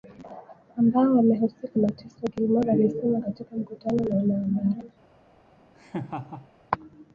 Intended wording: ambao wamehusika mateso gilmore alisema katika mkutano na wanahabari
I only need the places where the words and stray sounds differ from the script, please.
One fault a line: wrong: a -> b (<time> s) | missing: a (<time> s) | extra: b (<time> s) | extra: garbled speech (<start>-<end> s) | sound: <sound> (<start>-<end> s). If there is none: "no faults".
sound: laugh (5.7-6.5 s)